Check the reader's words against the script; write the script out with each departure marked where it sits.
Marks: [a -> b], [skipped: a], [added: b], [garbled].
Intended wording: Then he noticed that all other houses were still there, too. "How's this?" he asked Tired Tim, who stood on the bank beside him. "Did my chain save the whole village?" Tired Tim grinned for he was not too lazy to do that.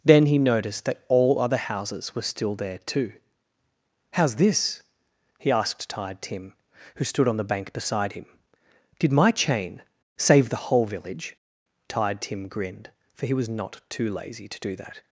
Then he noticed that all other houses were still there, too. "How's this?" he asked Tired Tim, who stood on the bank beside him. "Did my chain save the whole village?" Tired Tim grinned for he was not too lazy to do that.